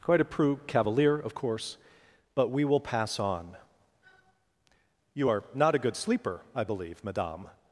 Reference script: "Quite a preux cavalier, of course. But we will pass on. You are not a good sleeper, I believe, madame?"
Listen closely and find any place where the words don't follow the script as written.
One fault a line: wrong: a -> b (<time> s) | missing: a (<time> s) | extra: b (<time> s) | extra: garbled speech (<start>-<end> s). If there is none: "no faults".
no faults